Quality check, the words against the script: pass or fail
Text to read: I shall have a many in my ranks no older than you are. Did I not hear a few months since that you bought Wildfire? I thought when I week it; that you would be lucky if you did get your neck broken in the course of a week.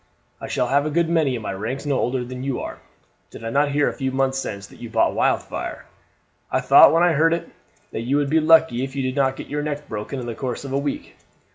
fail